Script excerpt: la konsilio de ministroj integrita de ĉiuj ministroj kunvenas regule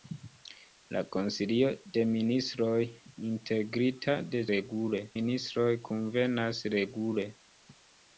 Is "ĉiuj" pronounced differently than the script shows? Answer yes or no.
yes